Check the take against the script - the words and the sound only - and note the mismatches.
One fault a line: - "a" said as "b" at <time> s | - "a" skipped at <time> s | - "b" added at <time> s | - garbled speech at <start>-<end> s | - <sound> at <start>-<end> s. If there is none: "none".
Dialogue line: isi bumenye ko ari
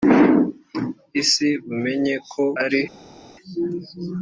none